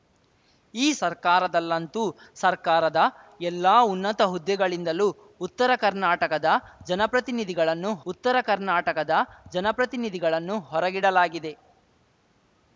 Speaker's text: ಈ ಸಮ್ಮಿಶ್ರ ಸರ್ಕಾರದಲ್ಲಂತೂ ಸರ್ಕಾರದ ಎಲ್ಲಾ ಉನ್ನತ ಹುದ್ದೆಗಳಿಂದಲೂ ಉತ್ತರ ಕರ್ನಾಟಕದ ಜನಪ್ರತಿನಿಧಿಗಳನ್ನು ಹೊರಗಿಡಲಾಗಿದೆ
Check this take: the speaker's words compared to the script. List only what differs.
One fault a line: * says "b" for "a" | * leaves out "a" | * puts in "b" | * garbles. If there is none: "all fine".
* leaves out "ಸಮ್ಮಿಶ್ರ"
* puts in "ಉತ್ತರ ಕರ್ನಾಟಕದ ಜನಪ್ರತಿನಿಧಿಗಳನ್ನು"